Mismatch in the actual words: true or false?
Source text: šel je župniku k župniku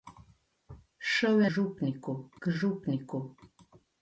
false